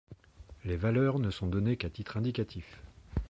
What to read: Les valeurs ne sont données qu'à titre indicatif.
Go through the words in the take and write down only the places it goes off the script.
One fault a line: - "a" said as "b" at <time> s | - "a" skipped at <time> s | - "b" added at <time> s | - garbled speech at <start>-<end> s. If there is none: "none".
none